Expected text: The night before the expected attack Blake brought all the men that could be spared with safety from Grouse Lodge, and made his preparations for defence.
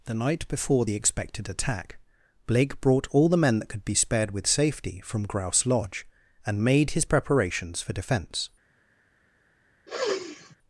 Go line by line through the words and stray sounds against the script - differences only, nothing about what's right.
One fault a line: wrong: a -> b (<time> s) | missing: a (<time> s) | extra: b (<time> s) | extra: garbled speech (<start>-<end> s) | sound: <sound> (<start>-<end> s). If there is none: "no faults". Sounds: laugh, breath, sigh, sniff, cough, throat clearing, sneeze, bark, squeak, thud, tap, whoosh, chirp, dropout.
sound: sniff (9.9-10.6 s)